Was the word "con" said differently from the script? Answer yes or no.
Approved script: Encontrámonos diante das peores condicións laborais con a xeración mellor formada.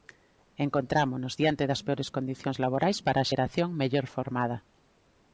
yes